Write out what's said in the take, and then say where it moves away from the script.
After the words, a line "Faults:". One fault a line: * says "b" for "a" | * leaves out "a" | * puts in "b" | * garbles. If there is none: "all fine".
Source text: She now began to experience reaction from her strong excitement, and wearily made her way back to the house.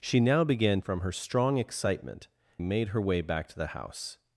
She now began from her strong excitement, made her way back to the house.
Faults:
* leaves out "to experience reaction"
* leaves out "and wearily"